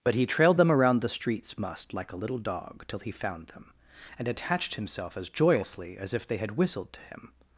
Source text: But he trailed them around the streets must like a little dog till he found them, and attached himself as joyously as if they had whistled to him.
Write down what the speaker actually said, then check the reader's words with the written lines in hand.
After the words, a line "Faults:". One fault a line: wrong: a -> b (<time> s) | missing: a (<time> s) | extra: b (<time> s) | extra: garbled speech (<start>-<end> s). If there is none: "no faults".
But he trailed them around the streets must like a little dog till he found them, and attached himself as joyously as if they had whistled to him.
Faults:
no faults